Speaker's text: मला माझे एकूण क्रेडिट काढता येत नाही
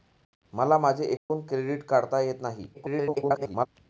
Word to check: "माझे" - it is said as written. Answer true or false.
true